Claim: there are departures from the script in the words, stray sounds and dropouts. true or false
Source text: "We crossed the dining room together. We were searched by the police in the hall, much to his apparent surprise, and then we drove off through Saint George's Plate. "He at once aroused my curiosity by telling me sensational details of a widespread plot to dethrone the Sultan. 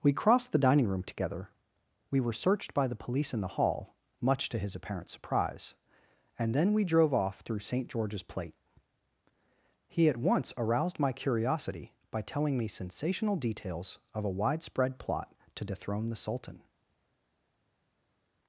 false